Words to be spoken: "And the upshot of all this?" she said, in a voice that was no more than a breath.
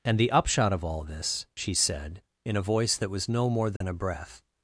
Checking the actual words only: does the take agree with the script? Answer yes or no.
yes